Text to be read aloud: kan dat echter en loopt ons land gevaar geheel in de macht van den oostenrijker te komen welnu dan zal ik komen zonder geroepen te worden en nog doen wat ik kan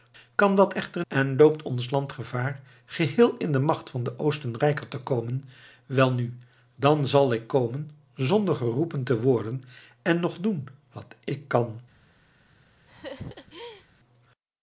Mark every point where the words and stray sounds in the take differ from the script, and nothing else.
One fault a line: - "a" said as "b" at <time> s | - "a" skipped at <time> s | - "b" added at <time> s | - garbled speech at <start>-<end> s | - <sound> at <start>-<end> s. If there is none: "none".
- laugh at 12.9-13.9 s